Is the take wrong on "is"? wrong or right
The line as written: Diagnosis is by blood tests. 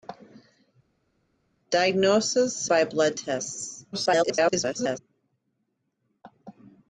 wrong